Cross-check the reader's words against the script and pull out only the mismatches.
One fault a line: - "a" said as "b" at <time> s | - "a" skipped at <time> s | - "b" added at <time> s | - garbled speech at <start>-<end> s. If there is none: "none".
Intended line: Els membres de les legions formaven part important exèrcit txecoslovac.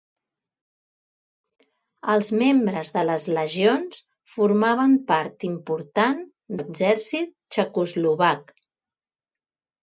none